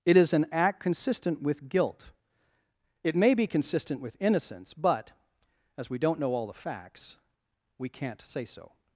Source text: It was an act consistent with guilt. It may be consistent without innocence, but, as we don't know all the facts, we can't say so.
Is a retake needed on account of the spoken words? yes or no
yes